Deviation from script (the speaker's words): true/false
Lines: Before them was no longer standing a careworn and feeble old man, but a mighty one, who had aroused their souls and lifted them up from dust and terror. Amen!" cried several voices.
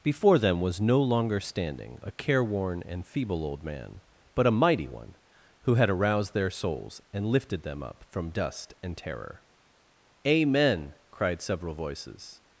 false